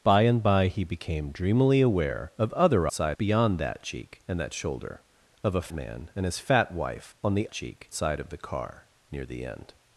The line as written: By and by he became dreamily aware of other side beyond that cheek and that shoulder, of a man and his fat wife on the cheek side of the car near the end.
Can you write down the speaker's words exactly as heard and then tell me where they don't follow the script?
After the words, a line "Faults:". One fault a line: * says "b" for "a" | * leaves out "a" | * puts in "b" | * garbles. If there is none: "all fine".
By and by he became dreamily aware of other side beyond that cheek and that shoulder, of a man and his fat wife on the cheek side of the car near the end.
Faults:
all fine